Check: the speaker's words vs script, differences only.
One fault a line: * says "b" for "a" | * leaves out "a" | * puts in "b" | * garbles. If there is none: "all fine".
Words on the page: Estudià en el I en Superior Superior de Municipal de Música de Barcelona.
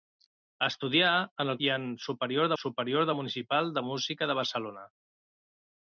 all fine